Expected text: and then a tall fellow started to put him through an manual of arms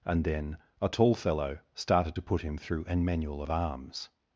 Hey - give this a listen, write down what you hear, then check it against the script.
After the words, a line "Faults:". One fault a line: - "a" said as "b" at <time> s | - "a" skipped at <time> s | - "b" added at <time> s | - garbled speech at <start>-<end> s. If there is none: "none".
and then a tall fellow started to put him through an manual of arms
Faults:
none